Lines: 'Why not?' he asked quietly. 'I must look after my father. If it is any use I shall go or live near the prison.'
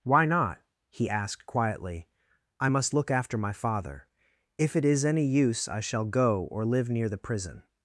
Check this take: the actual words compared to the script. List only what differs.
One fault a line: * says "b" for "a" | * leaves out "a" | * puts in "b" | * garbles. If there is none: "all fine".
all fine